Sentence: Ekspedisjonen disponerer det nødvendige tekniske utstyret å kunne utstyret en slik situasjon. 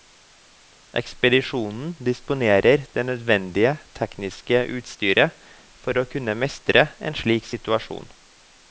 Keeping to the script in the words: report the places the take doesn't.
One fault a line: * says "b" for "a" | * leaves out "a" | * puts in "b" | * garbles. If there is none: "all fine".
* puts in "for"
* says "mestre" for "utstyret"